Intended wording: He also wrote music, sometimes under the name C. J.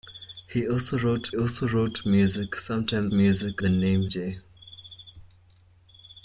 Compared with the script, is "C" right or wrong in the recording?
wrong